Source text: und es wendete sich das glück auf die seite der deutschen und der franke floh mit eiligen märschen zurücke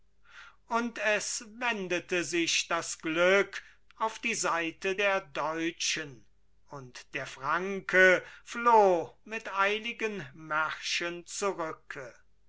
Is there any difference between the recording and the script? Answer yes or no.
no